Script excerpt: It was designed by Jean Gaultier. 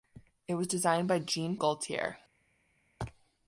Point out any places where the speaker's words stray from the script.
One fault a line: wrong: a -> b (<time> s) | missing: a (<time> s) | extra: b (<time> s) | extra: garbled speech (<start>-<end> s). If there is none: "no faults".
no faults